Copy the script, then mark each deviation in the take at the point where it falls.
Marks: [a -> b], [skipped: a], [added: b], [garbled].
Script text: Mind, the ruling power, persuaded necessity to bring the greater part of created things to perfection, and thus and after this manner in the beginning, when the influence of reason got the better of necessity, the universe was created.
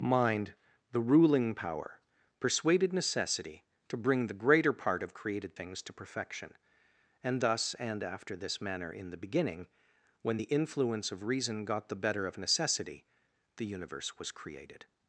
Mind, the ruling power, persuaded necessity to bring the greater part of created things to perfection, and thus and after this manner in the beginning, when the influence of reason got the better of necessity, the universe was created.